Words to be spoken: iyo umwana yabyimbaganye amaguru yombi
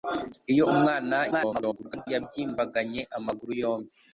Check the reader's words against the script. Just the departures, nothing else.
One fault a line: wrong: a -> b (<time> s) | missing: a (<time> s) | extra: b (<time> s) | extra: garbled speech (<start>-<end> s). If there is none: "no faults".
extra: garbled speech (1.3-2.1 s)